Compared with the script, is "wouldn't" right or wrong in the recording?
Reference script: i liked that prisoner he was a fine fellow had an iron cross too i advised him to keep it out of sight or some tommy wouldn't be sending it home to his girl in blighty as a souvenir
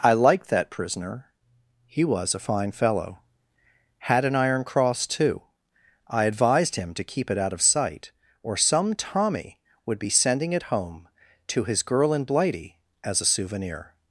wrong